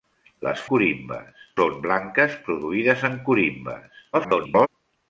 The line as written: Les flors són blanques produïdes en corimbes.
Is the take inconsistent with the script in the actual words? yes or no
yes